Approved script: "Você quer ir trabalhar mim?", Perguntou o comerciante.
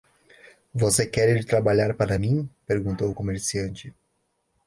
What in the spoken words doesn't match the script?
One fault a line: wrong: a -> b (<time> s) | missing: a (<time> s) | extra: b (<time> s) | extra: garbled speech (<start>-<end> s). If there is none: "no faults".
extra: para (1.9 s)